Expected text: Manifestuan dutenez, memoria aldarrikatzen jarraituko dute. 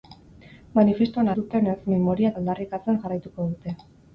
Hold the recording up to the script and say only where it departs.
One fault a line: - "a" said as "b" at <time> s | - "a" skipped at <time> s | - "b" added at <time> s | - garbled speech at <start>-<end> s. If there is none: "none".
none